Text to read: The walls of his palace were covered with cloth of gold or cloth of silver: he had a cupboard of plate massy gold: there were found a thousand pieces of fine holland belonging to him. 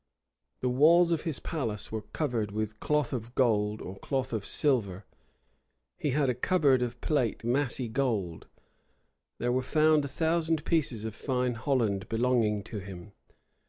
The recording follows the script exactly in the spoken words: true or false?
true